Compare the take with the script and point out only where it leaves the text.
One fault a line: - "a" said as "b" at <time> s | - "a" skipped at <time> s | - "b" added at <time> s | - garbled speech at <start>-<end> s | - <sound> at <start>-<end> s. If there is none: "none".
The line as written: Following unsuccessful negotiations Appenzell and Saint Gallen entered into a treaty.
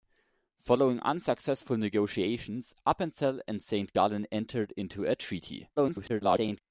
- garbled speech at 5.8-6.6 s